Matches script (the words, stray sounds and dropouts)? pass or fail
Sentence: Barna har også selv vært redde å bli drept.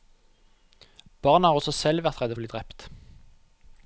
pass